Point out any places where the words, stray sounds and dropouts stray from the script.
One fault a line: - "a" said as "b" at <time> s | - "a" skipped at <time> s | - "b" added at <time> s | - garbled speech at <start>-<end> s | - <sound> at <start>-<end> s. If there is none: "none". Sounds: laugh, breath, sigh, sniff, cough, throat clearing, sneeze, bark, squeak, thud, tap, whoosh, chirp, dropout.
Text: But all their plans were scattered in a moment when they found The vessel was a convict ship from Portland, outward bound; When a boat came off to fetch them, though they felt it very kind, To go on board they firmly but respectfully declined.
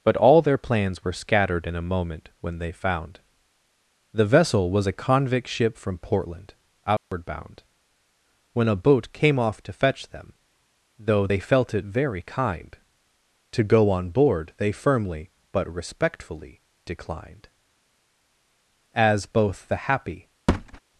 - dropout at 7.0-7.1 s
- "As both the happy" added at 18.9 s
- thud at 20.5-20.8 s